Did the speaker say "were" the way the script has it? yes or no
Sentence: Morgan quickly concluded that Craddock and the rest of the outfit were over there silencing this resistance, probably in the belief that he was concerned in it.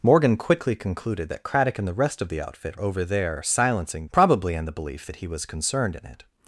no